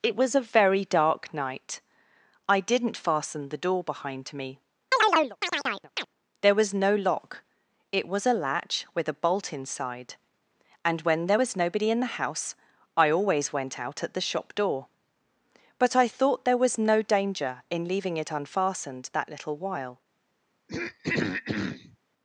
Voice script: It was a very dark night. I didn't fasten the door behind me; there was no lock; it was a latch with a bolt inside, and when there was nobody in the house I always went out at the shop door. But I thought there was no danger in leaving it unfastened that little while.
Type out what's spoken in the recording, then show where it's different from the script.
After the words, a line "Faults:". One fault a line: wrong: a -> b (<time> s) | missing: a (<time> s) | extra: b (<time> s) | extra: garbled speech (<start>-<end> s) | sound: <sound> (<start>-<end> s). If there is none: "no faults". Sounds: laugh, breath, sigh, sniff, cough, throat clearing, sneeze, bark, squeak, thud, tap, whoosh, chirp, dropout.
It was a very dark night. I didn't fasten the door behind me; there was no lock; it was a latch with a bolt inside, and when there was nobody in the house I always went out at the shop door. But I thought there was no danger in leaving it unfastened that little while.
Faults:
sound: chirp (4.9-6.1 s)
sound: throat clearing (20.7-22.0 s)